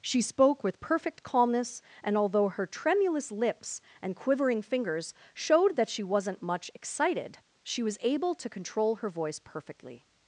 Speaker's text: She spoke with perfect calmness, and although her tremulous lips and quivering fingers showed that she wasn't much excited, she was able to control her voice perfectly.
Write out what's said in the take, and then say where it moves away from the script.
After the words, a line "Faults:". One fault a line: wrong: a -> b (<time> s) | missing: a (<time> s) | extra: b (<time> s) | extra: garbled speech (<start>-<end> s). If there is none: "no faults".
She spoke with perfect calmness, and although her tremulous lips and quivering fingers showed that she wasn't much excited, she was able to control her voice perfectly.
Faults:
no faults